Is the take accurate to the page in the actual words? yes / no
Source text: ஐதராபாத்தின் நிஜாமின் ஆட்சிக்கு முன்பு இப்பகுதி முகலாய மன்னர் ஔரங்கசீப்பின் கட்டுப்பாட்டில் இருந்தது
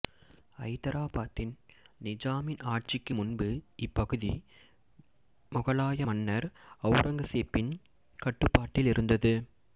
yes